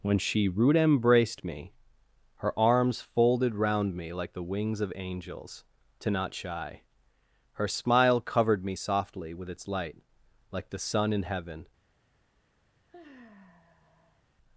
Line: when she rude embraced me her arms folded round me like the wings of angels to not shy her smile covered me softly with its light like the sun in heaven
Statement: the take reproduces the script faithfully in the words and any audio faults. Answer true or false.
false